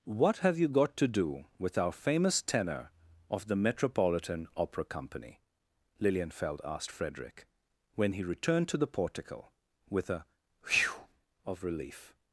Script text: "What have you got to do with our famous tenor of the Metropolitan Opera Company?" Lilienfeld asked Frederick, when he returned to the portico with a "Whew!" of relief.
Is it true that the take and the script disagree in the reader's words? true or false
false